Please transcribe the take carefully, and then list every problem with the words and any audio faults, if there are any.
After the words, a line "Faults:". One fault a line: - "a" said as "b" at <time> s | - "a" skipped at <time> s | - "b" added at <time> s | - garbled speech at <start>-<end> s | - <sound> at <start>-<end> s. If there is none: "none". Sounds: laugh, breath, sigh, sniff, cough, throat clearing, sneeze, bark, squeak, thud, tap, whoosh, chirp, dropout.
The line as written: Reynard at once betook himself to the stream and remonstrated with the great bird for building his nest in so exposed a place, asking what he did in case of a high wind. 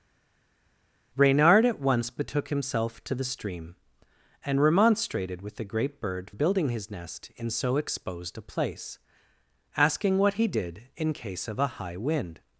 Reynard at once betook himself to the stream and remonstrated with the great bird building his nest in so exposed a place, asking what he did in case of a high wind.
Faults:
- "for" skipped at 6.3 s